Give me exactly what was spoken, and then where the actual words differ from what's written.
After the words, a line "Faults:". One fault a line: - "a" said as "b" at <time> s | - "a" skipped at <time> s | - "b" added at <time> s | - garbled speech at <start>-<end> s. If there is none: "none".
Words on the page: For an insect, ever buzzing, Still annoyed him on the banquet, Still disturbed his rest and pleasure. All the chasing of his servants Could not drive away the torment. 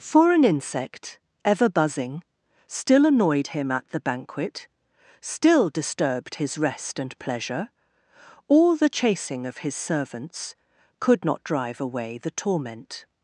For an insect, ever buzzing, Still annoyed him at the banquet, Still disturbed his rest and pleasure. All the chasing of his servants Could not drive away the torment.
Faults:
- "on" said as "at" at 3.7 s